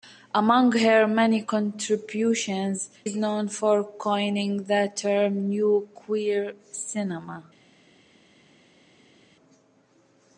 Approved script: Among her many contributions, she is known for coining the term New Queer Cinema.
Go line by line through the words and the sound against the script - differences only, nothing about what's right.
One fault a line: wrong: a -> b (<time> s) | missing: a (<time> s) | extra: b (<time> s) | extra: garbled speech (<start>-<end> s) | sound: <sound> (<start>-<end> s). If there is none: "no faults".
missing: she (2.9 s)